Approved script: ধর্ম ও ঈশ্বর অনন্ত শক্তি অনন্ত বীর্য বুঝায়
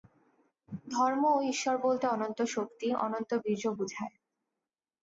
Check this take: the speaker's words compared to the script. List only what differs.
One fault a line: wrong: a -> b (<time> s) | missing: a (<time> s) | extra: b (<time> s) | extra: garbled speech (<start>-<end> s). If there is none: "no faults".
extra: বলতে (1.8 s)